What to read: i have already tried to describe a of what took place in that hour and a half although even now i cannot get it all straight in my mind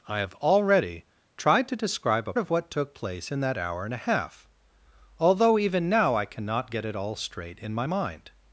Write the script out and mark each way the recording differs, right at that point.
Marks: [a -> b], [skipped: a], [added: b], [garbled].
i have already tried to describe a of what took place in that hour and a half although even now i cannot get it all straight in my mind